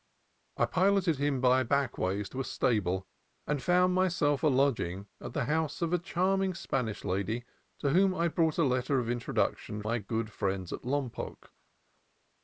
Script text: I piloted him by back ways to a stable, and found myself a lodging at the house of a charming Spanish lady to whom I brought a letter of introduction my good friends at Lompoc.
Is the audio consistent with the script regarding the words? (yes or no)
yes